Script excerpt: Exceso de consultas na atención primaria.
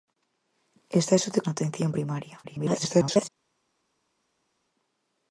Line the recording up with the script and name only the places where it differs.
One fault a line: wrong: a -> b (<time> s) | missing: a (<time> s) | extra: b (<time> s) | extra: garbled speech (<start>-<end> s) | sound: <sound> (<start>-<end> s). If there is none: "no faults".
missing: consultas (1.4 s)
extra: garbled speech (2.4-3.3 s)